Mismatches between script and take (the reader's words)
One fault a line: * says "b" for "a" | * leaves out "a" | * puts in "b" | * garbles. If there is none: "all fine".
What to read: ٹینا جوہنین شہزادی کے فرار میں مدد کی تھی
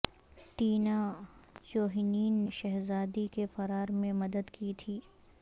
all fine